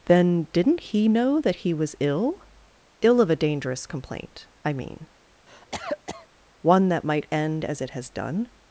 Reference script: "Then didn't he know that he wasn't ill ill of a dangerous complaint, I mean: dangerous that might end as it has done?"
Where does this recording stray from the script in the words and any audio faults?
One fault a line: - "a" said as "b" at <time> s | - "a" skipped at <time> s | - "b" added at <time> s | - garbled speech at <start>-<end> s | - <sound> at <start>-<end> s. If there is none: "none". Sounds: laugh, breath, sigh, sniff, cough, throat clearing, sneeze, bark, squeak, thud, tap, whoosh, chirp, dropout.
- "wasn't" said as "was" at 1.7 s
- cough at 5.5-6.3 s
- "dangerous" said as "one" at 6.6 s